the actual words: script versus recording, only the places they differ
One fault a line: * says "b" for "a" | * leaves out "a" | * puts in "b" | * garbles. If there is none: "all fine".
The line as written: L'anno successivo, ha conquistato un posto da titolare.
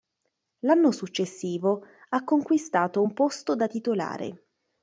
all fine